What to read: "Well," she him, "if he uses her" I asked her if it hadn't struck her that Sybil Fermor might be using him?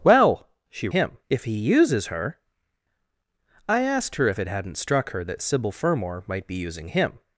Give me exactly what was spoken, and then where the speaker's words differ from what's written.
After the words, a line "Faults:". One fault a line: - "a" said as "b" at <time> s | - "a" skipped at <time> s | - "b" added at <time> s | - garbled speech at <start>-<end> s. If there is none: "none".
"Well," she him, "if he uses her" I asked her if it hadn't struck her that Sybil Fermor might be using him?
Faults:
none